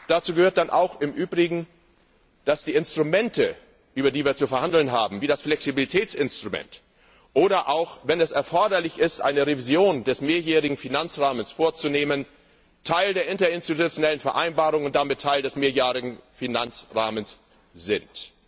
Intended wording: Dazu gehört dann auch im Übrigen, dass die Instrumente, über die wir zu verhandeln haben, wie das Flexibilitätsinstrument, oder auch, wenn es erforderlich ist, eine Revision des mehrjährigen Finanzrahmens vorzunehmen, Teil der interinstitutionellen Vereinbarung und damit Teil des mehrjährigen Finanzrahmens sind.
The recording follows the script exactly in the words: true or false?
true